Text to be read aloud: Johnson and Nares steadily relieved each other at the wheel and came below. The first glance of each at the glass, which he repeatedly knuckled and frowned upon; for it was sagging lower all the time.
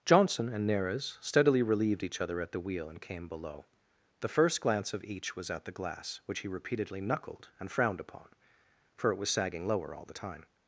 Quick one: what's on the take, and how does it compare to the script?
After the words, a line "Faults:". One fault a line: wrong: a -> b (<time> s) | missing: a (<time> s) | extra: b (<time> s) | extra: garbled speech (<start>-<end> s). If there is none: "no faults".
Johnson and Nares steadily relieved each other at the wheel and came below. The first glance of each was at the glass, which he repeatedly knuckled and frowned upon; for it was sagging lower all the time.
Faults:
extra: was (5.3 s)